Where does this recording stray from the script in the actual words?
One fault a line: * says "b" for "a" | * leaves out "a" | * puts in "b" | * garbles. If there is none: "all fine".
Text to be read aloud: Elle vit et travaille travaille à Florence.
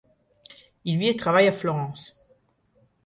* says "Il" for "Elle"
* leaves out "travaille"